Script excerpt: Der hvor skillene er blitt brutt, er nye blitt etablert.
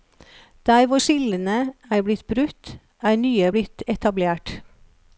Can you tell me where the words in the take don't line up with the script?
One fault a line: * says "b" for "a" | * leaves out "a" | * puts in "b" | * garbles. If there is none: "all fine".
all fine